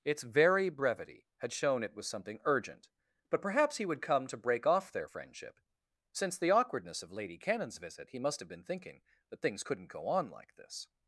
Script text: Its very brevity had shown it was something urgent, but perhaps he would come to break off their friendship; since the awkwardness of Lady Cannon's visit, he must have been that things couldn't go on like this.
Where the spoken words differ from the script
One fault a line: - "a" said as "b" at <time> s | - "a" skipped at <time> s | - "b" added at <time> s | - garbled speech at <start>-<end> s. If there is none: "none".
- "thinking" added at 8.6 s